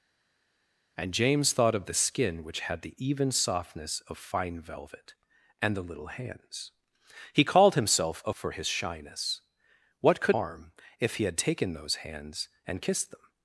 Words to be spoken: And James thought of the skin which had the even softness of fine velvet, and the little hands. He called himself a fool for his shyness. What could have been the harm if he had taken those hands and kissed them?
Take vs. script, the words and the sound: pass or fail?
fail